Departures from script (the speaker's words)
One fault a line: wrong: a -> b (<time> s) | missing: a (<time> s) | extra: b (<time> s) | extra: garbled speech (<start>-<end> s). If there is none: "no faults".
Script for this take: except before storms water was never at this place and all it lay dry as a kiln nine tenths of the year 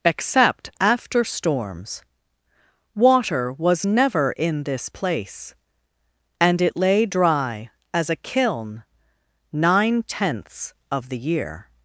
wrong: before -> after (0.8 s)
wrong: at -> in (4.4 s)
missing: all (6.6 s)